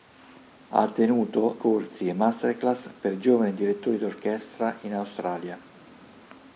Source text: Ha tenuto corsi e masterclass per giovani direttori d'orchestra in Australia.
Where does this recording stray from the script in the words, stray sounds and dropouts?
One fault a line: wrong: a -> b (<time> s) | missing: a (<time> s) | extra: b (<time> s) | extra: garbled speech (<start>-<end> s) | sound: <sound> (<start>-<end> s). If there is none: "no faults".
no faults